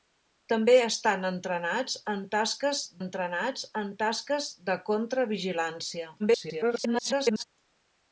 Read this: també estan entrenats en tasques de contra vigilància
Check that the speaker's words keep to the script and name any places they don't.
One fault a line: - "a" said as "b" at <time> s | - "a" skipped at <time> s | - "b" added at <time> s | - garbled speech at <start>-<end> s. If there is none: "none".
- "entrenats en tasques" added at 3.0 s
- garbled speech at 6.2-7.4 s